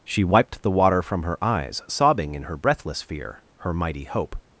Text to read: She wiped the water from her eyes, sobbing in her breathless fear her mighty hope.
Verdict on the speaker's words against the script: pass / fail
pass